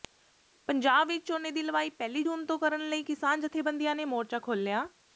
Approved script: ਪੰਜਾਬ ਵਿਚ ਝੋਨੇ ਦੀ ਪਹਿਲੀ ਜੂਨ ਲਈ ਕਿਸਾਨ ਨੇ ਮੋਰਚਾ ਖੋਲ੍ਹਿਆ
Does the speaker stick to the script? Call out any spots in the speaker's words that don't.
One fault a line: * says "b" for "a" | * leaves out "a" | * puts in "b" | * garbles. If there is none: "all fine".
* puts in "ਲਵਾਈ"
* puts in "ਤੋਂ ਕਰਨ"
* puts in "ਜਥੇਬੰਦੀਆਂ"